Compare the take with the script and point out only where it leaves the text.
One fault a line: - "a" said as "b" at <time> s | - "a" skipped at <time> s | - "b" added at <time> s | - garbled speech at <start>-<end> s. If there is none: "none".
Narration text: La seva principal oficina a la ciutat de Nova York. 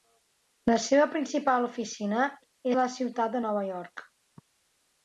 none